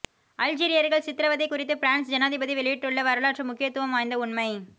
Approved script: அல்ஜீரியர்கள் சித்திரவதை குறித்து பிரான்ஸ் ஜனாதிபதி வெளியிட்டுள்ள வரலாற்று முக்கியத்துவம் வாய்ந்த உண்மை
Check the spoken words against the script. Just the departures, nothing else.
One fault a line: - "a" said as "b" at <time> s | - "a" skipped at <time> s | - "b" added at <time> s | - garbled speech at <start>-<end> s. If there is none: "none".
none